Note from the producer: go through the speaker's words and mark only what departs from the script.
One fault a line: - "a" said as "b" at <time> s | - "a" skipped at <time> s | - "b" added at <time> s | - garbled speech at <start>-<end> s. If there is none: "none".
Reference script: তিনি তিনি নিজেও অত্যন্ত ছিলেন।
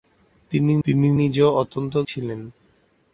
none